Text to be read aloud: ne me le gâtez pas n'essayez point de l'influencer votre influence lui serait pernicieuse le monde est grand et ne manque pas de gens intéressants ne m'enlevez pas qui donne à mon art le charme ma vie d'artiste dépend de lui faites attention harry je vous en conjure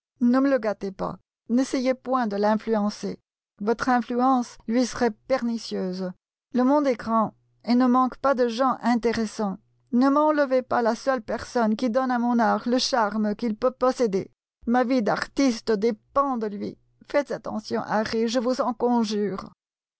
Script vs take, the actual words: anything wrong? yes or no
yes